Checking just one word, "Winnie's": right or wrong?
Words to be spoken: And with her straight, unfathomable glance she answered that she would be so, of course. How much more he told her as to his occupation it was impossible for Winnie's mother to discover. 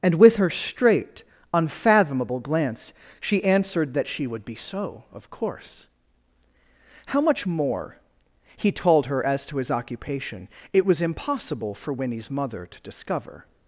right